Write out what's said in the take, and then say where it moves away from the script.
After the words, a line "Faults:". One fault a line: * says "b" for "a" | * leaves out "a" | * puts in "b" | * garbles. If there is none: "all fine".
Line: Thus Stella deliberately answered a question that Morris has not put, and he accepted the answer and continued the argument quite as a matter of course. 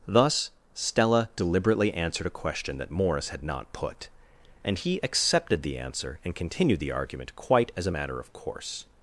Thus Stella deliberately answered a question that Morris had not put, and he accepted the answer and continued the argument quite as a matter of course.
Faults:
* says "had" for "has"